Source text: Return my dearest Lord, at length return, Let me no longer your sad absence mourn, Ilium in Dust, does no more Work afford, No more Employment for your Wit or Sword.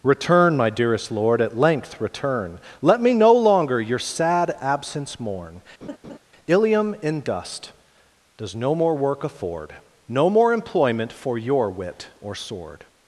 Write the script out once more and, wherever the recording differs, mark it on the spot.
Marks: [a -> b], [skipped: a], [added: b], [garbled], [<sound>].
Return my dearest Lord, at length return, Let me no longer your sad absence mourn, [laugh] Ilium in Dust, does no more Work afford, No more Employment for your Wit or Sword.